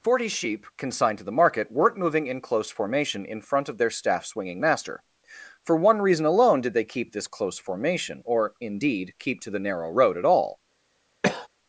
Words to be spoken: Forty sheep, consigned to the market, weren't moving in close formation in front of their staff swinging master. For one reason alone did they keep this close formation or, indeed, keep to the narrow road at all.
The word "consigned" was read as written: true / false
true